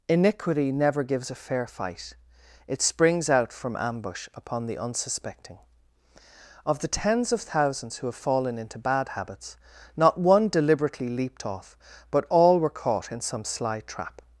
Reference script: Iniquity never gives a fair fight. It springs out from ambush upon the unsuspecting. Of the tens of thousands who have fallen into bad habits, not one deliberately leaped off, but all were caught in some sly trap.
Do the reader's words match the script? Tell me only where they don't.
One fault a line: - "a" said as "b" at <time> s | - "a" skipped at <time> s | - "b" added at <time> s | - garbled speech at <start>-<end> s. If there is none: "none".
none